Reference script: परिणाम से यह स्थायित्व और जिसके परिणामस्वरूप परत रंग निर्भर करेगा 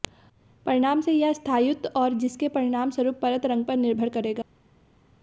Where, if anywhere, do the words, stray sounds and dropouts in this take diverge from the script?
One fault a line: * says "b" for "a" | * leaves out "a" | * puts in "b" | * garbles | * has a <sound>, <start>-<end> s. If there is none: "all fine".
* puts in "पर"